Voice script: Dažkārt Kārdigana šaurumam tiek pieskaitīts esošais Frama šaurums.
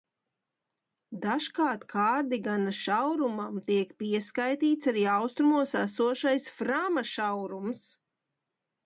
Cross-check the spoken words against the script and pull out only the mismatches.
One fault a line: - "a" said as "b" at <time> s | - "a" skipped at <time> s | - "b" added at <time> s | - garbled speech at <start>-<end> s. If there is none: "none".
- "arī austrumos" added at 4.9 s